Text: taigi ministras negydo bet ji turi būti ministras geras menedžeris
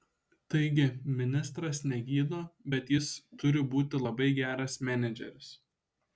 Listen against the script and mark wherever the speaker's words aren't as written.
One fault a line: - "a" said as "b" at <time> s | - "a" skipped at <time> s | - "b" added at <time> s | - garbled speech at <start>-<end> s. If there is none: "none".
- "ji" said as "jis" at 2.9 s
- "ministras" said as "labai" at 4.1 s